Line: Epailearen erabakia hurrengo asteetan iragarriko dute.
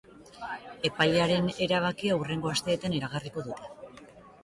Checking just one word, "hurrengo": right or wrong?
right